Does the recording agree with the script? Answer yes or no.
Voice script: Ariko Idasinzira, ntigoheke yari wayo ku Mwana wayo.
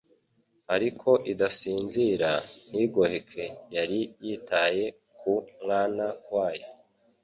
no